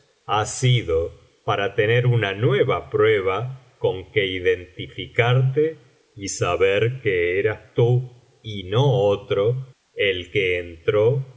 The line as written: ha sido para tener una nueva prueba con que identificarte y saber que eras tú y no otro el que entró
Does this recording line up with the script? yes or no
yes